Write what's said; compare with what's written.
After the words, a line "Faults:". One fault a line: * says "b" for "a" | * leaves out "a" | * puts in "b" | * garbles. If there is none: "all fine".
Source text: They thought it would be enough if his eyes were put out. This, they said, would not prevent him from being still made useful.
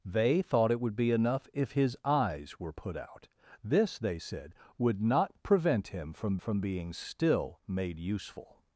They thought it would be enough if his eyes were put out. This, they said, would not prevent him from from being still made useful.
Faults:
* puts in "from"